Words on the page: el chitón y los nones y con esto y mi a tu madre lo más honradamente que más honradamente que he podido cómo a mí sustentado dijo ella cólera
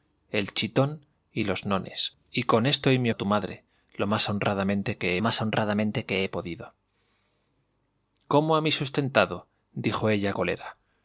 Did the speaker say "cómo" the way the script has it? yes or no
yes